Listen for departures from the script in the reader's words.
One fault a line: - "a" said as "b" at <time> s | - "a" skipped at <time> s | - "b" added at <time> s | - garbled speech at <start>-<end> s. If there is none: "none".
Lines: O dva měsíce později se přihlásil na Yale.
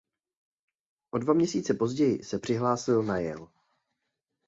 none